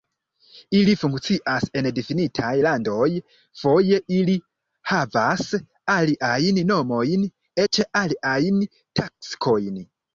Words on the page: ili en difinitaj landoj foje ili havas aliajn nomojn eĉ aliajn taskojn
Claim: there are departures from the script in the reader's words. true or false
true